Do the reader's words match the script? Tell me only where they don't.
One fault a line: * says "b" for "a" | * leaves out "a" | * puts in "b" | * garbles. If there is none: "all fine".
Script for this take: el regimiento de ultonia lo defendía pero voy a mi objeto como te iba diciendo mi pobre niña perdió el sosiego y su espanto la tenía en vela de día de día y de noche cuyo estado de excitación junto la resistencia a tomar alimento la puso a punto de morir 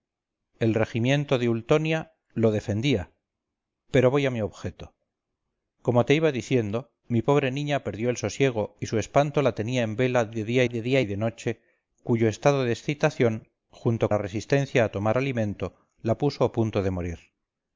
all fine